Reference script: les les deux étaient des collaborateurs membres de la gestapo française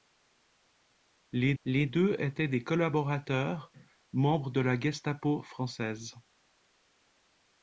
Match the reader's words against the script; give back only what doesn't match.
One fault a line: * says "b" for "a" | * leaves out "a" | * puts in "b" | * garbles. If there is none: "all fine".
all fine